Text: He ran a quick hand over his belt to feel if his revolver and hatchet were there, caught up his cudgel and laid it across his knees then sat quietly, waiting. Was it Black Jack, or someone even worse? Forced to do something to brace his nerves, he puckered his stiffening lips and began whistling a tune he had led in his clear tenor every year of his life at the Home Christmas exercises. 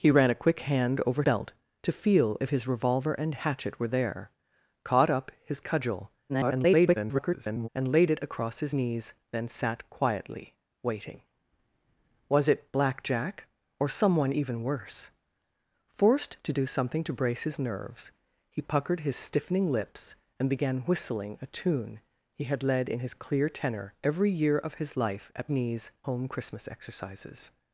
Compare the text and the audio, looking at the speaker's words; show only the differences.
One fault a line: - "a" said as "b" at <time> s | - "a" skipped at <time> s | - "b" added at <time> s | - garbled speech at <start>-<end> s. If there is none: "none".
- "his" skipped at 1.2 s
- garbled speech at 6.3-7.7 s
- "the" said as "knees" at 25.5 s